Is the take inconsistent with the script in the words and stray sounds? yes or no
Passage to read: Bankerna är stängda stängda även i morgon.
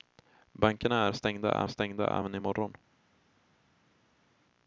no